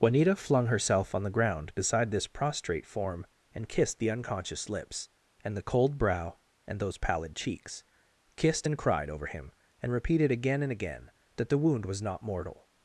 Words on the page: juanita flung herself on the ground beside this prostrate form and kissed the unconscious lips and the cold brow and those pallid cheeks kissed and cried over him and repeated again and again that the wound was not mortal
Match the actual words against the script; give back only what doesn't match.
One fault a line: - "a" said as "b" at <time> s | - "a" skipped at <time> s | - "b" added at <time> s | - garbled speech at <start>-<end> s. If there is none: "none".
none